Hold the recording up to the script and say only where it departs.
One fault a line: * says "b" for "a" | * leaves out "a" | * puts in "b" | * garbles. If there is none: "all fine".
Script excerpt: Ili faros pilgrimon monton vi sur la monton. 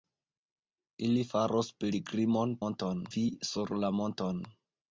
all fine